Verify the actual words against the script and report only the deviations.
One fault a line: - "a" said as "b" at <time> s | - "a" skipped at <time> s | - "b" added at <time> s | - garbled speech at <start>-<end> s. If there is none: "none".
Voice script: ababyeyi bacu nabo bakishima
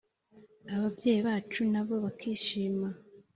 none